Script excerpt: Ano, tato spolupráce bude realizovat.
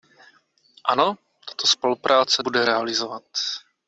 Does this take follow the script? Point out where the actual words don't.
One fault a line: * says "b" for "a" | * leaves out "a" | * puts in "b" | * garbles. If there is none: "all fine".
all fine